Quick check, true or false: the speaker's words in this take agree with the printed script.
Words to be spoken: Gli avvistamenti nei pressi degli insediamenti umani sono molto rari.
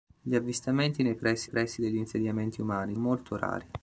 false